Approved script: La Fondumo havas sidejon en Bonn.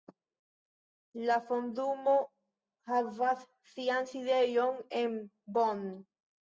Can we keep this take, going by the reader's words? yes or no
no